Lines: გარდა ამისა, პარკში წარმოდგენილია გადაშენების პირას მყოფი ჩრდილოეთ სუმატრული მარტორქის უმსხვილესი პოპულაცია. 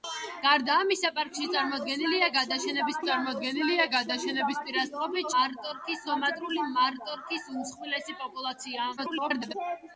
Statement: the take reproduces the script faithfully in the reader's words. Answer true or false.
false